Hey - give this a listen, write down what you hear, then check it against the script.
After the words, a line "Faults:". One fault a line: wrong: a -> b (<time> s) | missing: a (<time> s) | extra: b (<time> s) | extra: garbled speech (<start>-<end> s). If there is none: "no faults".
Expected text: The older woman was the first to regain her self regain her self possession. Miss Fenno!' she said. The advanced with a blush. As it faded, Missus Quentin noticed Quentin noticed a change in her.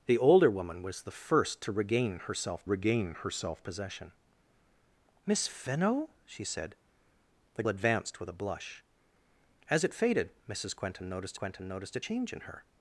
The older woman was the first to regain her self regain her self possession. Miss Fenno!' she said. The advanced with a blush. As it faded, Missus Quentin noticed Quentin noticed a change in her.
Faults:
no faults